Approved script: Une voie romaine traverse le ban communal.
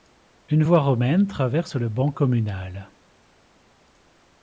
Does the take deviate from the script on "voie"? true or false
false